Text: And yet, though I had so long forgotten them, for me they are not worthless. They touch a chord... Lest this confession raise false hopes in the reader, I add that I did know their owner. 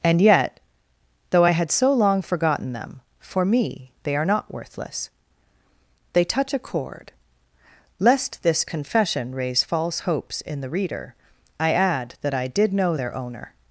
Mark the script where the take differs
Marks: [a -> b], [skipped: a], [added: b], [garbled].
And yet, though I had so long forgotten them, for me they are not worthless. They touch a chord... Lest this confession raise false hopes in the reader, I add that I did know their owner.